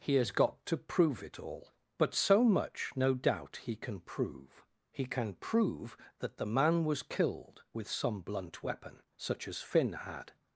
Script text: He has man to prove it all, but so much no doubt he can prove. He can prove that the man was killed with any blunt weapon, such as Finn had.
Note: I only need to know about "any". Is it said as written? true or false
false